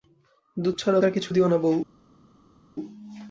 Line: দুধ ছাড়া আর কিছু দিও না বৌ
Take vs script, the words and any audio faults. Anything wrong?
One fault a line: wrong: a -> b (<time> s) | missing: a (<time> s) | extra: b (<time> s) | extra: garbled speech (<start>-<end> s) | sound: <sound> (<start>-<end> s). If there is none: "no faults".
no faults